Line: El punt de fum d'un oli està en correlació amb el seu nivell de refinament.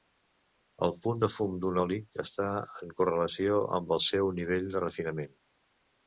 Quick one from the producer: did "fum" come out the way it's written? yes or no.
yes